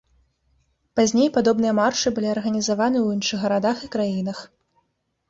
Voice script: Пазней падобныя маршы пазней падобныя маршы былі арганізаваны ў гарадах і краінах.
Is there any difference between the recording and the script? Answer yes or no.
yes